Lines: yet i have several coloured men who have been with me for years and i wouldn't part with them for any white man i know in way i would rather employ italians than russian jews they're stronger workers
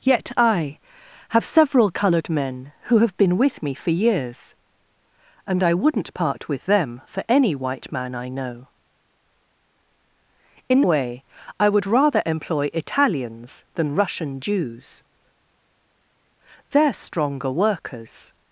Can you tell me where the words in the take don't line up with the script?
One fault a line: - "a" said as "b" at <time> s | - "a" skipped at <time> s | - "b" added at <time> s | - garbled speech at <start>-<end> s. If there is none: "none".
none